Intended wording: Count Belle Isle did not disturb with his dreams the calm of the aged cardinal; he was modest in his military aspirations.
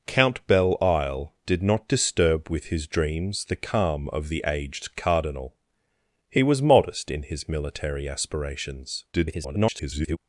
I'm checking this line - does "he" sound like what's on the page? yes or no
yes